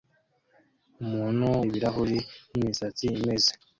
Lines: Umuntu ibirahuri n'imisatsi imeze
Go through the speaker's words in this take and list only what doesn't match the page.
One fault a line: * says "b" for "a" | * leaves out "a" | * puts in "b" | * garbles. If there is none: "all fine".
all fine